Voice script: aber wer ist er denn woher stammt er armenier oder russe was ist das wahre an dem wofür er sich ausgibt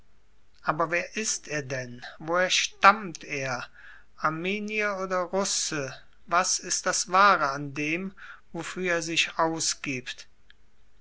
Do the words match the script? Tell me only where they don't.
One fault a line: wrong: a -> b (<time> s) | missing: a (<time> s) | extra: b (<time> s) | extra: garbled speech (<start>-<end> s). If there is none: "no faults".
no faults